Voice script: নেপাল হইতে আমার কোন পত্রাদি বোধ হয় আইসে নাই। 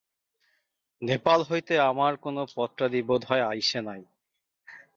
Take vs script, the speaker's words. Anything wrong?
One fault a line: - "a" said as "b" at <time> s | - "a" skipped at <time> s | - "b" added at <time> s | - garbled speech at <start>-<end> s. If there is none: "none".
none